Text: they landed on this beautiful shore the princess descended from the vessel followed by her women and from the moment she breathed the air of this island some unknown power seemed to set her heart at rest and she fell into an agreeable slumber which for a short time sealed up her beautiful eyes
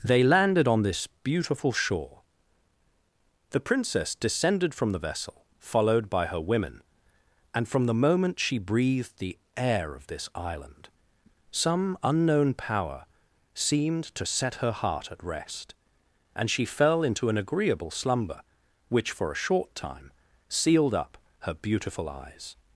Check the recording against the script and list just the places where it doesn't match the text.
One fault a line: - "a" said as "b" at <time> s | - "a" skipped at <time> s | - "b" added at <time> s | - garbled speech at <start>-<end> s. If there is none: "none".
none